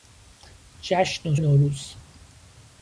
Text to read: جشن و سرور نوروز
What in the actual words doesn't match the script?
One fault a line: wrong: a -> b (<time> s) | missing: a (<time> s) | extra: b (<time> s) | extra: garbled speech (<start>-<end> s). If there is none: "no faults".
missing: سرور (1.4 s)